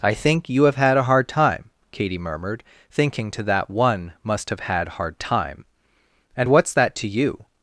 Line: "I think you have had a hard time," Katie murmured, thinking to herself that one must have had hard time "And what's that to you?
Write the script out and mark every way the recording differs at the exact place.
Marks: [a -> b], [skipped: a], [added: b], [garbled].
"I think you have had a hard time," Katie murmured, thinking to [skipped: herself] that one must have had hard time "And what's that to you?